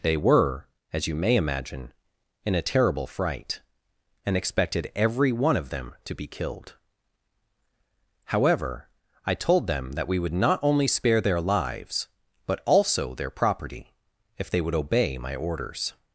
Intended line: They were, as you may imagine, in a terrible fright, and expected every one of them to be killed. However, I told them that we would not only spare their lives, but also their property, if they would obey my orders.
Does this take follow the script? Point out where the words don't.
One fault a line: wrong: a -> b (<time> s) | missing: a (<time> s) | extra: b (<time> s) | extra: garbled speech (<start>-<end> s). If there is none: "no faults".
no faults